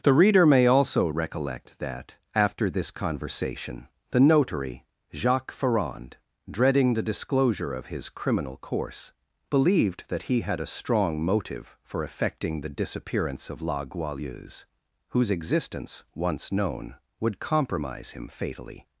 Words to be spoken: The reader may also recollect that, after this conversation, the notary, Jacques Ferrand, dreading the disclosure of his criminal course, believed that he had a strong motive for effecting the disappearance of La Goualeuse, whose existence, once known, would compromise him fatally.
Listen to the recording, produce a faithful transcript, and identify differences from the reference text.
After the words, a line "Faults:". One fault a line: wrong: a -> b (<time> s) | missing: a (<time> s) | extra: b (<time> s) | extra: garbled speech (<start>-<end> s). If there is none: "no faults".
The reader may also recollect that, after this conversation, the notary, Jacques Ferrand, dreading the disclosure of his criminal course, believed that he had a strong motive for effecting the disappearance of La Goualeuse, whose existence, once known, would compromise him fatally.
Faults:
no faults